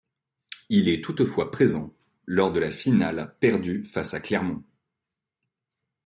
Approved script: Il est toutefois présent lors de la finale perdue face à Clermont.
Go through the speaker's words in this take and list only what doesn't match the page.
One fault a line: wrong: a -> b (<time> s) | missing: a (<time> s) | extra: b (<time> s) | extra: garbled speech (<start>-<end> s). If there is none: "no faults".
no faults